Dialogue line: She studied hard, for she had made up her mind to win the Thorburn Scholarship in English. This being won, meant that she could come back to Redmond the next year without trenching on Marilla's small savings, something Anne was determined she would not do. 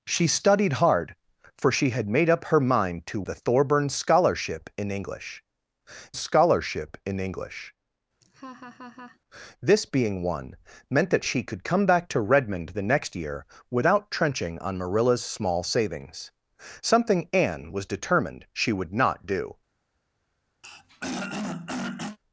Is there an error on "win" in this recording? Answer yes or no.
yes